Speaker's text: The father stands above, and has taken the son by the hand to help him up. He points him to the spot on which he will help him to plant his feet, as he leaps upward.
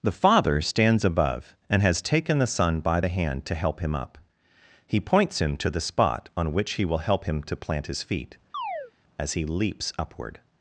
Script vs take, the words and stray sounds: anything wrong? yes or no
yes